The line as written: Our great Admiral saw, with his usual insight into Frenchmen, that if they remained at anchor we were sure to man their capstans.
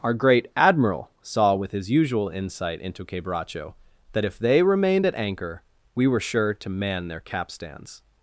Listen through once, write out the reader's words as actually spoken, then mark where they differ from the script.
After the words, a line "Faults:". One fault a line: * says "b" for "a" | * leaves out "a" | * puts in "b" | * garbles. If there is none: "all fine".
Our great Admiral saw, with his usual insight into Quebracho, that if they remained at anchor we were sure to man their capstans.
Faults:
* says "Quebracho" for "Frenchmen"